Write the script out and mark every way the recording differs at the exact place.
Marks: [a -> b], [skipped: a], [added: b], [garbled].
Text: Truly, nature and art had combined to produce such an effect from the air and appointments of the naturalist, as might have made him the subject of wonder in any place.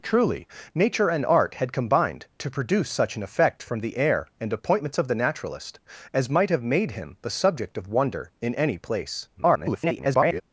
Truly, nature and art had combined to produce such an effect from the air and appointments of the naturalist, as might have made him the subject of wonder in any place. [garbled]